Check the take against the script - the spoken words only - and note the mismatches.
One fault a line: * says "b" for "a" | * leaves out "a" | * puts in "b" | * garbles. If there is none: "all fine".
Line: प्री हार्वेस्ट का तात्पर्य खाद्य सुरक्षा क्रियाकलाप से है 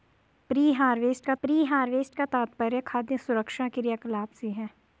* puts in "प्री हार्वेस्ट का"